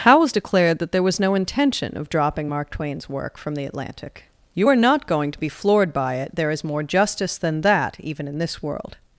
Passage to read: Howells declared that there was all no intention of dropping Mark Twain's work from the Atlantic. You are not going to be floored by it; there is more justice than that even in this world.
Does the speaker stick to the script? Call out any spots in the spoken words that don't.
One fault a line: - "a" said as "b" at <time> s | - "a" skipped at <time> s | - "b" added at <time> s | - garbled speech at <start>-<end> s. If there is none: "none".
- "all" skipped at 1.2 s